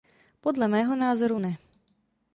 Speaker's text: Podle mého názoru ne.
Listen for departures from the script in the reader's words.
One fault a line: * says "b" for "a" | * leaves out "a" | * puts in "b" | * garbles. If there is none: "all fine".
all fine